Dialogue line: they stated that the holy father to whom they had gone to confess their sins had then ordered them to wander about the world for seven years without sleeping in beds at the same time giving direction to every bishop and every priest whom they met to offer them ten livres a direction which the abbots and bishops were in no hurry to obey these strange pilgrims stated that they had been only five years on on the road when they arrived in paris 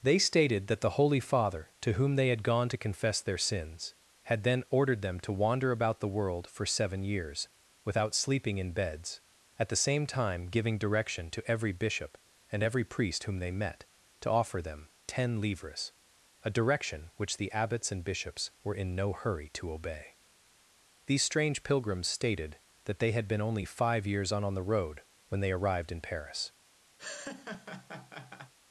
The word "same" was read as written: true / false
true